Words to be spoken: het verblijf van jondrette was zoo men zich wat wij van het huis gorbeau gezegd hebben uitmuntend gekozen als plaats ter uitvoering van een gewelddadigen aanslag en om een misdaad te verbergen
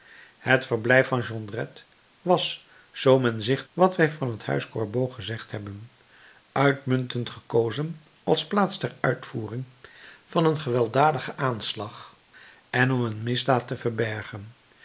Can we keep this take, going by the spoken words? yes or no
yes